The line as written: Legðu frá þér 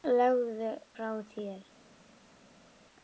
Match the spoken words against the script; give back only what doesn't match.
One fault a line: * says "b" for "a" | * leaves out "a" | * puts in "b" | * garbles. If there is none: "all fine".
all fine